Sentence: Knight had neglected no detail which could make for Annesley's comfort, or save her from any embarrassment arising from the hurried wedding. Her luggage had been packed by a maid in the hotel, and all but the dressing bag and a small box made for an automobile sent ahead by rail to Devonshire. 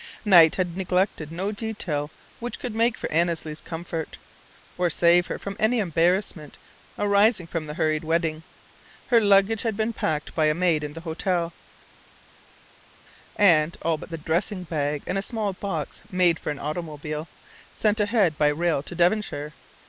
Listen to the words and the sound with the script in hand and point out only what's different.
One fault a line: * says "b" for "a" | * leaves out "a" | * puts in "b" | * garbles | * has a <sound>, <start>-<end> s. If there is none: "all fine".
all fine